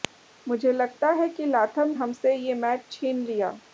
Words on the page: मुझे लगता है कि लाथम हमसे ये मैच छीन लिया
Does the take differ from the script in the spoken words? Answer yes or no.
no